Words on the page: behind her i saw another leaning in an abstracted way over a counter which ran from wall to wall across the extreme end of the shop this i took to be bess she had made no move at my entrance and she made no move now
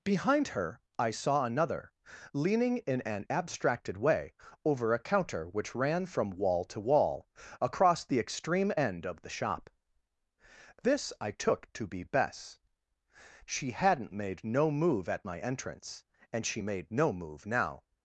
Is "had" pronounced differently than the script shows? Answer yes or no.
yes